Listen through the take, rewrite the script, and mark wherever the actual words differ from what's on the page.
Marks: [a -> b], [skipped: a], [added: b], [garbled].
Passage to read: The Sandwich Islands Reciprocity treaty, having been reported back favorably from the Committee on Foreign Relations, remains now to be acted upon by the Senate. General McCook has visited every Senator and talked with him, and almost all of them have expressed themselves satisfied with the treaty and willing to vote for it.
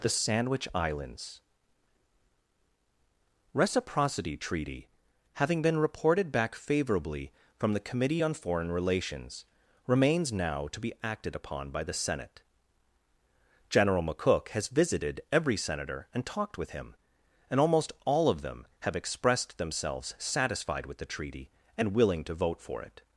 The Sandwich Islands Reciprocity treaty, having been reported back favorably from the Committee on Foreign Relations, remains now to be acted upon by the Senate. General McCook has visited every Senator and talked with him, and almost all of them have expressed themselves satisfied with the treaty and willing to vote for it.